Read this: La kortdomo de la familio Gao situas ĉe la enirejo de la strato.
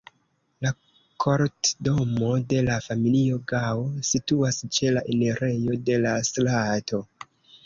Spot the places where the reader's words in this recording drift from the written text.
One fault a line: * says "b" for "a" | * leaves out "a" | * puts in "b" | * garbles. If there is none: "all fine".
all fine